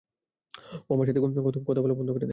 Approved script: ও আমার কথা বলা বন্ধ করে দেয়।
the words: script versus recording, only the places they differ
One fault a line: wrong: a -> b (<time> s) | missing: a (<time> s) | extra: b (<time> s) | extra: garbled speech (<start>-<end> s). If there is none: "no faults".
extra: সাথে (1.1 s)